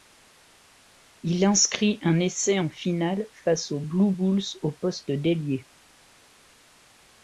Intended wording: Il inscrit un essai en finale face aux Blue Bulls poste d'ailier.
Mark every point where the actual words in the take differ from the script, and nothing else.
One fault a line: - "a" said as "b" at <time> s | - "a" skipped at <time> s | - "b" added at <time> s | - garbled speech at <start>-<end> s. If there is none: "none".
- "au" added at 4.6 s